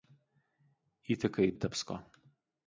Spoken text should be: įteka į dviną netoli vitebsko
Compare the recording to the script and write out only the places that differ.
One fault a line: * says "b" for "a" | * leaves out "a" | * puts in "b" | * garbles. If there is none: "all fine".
* leaves out "dviną netoli"